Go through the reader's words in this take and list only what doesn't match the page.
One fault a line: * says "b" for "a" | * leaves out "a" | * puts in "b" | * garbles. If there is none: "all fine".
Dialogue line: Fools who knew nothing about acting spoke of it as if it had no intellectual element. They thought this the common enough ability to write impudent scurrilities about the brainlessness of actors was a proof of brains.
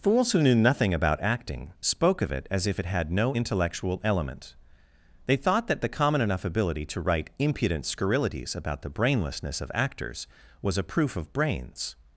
* says "that" for "this"